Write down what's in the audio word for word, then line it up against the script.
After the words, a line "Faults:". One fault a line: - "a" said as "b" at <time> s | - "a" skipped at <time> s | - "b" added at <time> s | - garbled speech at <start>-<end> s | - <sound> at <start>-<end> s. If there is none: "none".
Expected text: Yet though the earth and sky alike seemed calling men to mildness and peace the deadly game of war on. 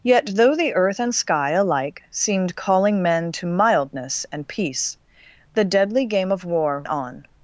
Yet though the earth and sky alike seemed calling men to mildness and peace the deadly game of war on.
Faults:
none